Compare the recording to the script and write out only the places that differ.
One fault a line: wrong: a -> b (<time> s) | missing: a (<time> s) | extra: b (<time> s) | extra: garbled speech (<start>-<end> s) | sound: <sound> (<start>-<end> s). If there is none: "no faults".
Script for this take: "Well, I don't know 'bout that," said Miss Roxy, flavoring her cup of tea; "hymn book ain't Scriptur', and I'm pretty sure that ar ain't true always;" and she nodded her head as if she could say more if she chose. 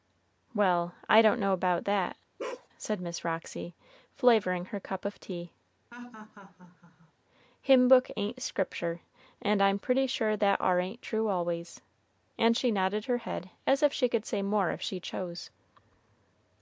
sound: bark (2.4-2.7 s)
sound: laugh (5.9-7.1 s)